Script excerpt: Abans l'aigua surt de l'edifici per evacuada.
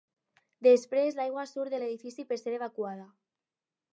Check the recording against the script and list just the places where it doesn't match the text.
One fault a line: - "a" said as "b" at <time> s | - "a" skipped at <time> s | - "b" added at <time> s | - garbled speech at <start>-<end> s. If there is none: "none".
- "Abans" said as "Després" at 0.7 s
- "ser" added at 2.4 s